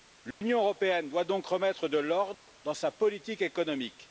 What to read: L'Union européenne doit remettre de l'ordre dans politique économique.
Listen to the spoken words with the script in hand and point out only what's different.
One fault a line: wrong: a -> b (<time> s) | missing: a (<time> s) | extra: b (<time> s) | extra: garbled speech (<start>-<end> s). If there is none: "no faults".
extra: donc (1.2 s)
extra: sa (2.7 s)